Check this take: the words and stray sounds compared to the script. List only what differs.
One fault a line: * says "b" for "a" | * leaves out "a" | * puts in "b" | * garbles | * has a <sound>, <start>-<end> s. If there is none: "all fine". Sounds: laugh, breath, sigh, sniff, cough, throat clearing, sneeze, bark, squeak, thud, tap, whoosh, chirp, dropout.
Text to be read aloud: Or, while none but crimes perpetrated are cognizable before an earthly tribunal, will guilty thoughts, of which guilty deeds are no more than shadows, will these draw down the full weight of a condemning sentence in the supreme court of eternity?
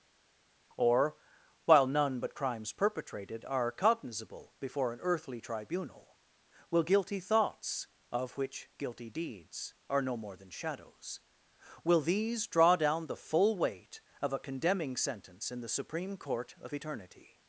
all fine